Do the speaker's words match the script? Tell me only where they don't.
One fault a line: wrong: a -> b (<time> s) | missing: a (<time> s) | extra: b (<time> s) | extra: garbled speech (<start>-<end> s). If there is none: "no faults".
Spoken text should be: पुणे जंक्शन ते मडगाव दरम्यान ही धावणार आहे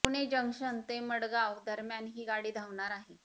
extra: गाडी (2.2 s)